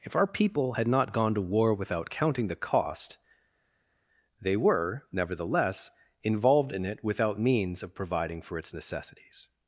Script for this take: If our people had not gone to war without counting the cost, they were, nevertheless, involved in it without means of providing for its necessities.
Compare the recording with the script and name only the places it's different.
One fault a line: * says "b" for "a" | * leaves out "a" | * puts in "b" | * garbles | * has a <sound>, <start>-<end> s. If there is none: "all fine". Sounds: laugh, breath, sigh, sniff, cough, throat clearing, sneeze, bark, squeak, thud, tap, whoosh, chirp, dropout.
all fine